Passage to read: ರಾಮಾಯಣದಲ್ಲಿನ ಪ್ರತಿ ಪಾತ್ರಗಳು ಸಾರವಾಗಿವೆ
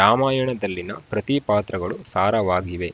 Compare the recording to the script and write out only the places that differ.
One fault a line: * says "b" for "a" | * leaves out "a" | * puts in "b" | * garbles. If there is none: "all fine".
all fine